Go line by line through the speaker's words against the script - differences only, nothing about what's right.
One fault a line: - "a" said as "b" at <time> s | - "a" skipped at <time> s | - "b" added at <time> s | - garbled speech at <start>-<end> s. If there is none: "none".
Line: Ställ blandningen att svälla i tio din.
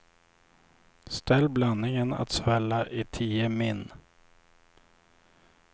- "din" said as "min" at 3.5 s